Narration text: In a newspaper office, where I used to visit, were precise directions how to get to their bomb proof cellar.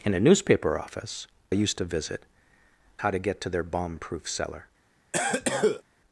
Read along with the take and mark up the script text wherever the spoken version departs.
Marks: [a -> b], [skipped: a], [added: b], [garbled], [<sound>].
In a newspaper office, [skipped: where] I used to visit, [skipped: were precise directions] how to get to their bomb proof cellar. [cough]